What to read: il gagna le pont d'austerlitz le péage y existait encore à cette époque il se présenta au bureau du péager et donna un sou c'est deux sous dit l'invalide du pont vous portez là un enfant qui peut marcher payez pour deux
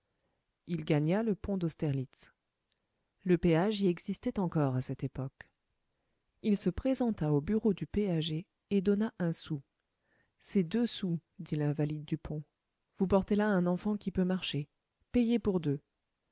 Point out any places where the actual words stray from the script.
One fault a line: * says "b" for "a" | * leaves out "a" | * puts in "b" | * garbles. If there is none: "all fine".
all fine